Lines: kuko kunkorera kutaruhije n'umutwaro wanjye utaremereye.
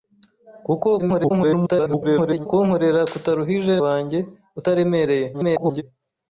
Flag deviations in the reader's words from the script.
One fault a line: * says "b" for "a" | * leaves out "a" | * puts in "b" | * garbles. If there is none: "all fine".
* garbles
* leaves out "n'umutwaro"
* garbles